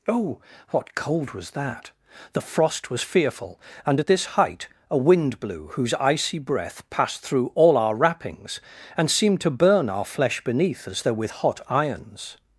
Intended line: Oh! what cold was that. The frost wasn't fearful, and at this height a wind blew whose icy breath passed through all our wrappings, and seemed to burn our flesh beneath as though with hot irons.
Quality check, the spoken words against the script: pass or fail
fail